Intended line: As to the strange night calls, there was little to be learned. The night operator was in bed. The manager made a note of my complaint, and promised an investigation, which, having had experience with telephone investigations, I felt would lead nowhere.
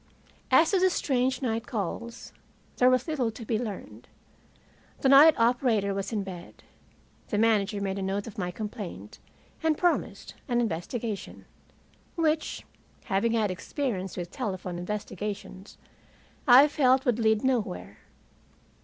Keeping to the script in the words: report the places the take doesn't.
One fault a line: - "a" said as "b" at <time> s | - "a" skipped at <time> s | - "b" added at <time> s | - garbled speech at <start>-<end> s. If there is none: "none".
none